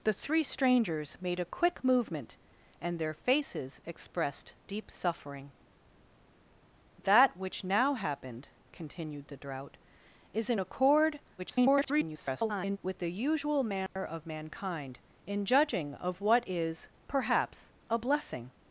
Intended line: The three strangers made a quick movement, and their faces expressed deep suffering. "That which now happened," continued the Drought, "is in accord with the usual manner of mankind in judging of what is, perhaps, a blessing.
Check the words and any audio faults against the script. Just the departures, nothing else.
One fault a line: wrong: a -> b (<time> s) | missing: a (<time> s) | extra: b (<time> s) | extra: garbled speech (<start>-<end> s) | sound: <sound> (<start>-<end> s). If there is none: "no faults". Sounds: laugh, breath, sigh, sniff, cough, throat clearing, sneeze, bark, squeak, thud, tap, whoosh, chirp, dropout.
extra: garbled speech (11.4-12.8 s)
sound: dropout (13.9-14.0 s)